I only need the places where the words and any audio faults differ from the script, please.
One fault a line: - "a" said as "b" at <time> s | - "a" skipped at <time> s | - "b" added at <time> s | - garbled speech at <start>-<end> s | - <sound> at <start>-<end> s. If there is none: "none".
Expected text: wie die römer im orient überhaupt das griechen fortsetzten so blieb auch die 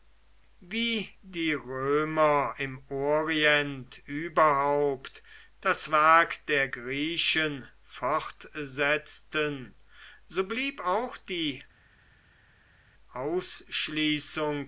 - "werk der" added at 5.9 s